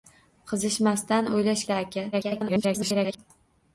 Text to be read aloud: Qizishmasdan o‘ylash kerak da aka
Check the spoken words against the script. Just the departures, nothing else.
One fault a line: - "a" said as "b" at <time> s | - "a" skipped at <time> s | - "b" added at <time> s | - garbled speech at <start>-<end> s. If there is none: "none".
- "kerak" skipped at 1.6 s
- garbled speech at 2.1-3.2 s